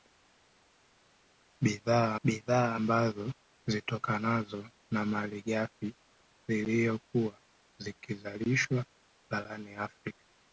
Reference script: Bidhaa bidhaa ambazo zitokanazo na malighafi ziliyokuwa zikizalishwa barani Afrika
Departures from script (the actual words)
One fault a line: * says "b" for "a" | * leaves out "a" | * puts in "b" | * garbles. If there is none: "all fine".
all fine